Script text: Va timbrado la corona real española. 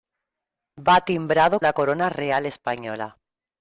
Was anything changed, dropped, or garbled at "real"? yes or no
no